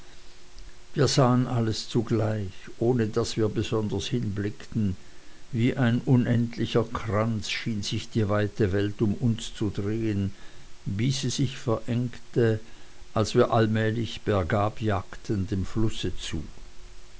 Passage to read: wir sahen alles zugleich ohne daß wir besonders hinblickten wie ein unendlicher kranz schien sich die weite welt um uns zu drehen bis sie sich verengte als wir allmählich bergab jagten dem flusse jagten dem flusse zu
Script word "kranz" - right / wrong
right